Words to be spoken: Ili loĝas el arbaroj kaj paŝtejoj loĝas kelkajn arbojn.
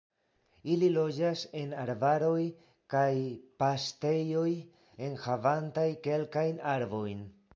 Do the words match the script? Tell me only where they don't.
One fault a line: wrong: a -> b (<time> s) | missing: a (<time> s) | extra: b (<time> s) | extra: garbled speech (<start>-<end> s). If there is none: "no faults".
wrong: el -> en (1.6 s)
wrong: loĝas -> enhavantaj (5.1 s)